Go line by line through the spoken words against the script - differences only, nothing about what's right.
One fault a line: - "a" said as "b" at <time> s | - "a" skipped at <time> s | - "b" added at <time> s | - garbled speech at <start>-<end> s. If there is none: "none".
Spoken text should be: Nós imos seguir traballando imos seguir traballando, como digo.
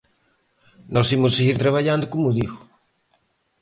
- "imos seguir traballando" skipped at 2.1 s